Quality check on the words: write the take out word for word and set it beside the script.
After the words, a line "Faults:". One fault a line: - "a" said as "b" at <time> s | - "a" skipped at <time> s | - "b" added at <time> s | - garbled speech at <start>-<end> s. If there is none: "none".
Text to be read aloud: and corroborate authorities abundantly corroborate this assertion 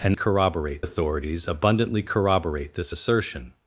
and corroborate authorities abundantly corroborate this assertion
Faults:
none